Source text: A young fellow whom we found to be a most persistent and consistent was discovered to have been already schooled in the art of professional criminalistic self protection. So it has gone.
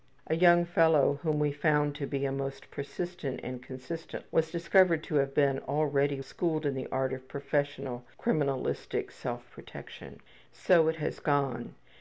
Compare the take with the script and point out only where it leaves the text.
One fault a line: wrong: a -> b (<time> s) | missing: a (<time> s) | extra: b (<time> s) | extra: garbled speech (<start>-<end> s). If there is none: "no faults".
no faults